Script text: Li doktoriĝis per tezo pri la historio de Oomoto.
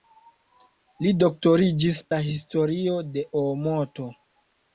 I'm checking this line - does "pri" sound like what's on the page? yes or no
no